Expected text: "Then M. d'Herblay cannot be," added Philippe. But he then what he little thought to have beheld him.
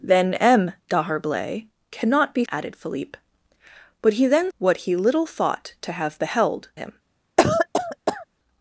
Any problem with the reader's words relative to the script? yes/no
no